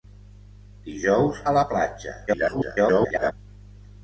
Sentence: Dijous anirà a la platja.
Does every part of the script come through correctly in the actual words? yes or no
no